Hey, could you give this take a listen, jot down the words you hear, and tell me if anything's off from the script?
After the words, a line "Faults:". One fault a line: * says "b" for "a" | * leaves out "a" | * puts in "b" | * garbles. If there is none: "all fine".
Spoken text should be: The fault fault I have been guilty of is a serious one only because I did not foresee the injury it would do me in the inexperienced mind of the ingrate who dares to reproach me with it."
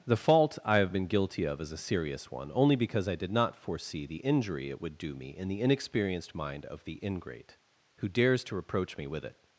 The fault I have been guilty of is a serious one only because I did not foresee the injury it would do me in the inexperienced mind of the ingrate who dares to reproach me with it."
Faults:
* leaves out "fault"